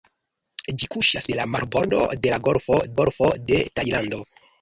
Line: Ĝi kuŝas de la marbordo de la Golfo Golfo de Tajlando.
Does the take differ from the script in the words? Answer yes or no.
no